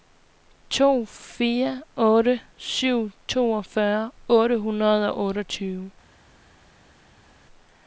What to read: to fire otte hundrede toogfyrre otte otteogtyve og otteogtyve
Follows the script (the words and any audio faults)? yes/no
no